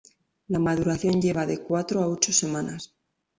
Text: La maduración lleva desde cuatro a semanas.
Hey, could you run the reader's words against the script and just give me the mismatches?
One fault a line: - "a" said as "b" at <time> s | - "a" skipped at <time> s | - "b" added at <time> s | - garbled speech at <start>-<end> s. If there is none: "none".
- "desde" said as "de" at 1.5 s
- "ocho" added at 2.1 s